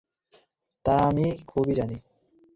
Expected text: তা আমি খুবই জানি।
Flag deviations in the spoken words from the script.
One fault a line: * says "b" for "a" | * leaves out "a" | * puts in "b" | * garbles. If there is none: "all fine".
all fine